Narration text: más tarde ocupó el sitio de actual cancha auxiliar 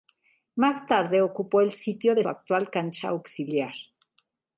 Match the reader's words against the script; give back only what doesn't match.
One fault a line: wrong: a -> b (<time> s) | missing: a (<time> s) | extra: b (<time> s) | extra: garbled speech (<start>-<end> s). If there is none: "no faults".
no faults